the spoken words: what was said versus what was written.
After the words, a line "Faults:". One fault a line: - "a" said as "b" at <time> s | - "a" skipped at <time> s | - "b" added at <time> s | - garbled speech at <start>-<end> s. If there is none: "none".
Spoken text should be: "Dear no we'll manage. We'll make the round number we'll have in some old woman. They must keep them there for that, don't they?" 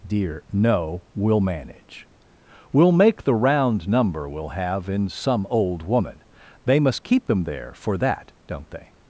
"Dear no we'll manage. We'll make the round number we'll have in some old woman. They must keep them there for that, don't they?"
Faults:
none